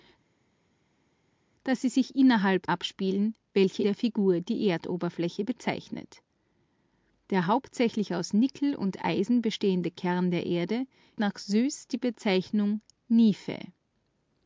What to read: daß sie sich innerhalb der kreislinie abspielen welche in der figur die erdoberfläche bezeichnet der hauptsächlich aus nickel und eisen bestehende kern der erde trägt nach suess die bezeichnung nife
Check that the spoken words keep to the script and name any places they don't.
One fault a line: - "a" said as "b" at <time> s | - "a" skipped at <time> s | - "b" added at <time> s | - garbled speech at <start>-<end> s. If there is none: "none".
- "der kreislinie" skipped at 2.7 s
- "in" skipped at 3.8 s
- "trägt" skipped at 10.9 s